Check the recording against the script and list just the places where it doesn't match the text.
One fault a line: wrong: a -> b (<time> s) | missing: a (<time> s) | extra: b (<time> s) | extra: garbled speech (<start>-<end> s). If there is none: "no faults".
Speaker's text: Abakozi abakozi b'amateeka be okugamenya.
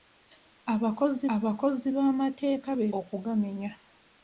no faults